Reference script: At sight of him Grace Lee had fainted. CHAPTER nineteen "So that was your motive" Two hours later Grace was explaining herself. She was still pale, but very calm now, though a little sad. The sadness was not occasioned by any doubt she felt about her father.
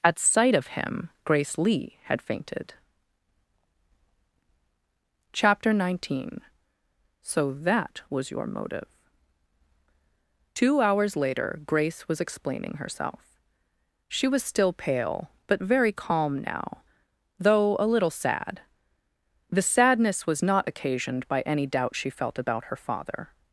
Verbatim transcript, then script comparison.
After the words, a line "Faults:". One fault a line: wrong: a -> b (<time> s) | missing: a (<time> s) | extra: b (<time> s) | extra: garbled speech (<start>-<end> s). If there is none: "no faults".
At sight of him Grace Lee had fainted. CHAPTER nineteen "So that was your motive" Two hours later Grace was explaining herself. She was still pale, but very calm now, though a little sad. The sadness was not occasioned by any doubt she felt about her father.
Faults:
no faults